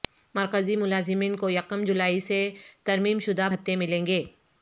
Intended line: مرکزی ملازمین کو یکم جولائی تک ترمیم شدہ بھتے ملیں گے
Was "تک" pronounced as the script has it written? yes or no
no